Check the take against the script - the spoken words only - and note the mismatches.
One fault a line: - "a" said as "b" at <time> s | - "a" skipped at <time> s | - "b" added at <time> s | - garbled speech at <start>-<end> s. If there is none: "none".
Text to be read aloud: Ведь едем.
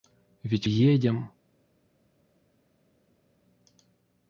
none